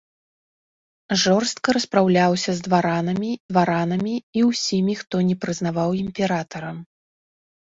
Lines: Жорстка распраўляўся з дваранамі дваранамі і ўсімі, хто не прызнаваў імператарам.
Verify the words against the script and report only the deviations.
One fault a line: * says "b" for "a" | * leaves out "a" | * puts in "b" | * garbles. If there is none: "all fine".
all fine